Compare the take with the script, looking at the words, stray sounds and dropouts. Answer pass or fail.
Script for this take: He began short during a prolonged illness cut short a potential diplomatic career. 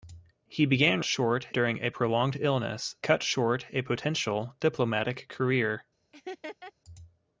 fail